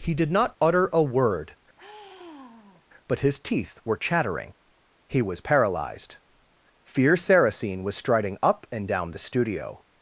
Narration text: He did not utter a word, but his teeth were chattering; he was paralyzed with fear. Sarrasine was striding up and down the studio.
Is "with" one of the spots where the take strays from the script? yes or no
yes